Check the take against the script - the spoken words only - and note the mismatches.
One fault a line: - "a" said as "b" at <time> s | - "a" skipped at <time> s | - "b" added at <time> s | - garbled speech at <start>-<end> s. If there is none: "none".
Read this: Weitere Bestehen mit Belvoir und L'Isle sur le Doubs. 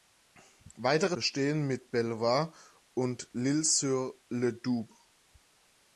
none